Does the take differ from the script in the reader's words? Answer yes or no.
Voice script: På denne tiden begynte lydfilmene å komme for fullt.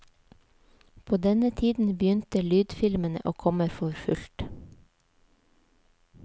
no